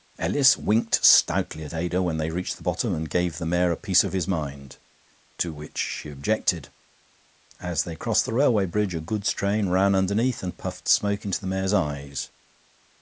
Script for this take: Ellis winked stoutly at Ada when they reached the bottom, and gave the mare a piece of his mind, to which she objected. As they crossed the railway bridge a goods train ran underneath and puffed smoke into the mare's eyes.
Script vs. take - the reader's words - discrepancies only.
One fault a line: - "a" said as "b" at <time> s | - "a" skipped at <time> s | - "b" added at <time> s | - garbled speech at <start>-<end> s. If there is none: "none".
none